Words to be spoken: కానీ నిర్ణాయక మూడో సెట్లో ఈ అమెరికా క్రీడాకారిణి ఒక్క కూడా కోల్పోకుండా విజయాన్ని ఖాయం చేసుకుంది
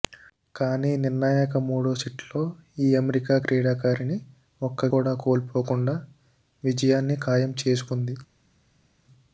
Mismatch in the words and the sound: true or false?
false